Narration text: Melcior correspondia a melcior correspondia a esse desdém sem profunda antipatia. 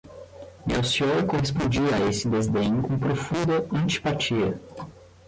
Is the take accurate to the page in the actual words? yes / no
no